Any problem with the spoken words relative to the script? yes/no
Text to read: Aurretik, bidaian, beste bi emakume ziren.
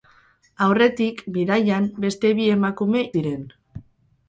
no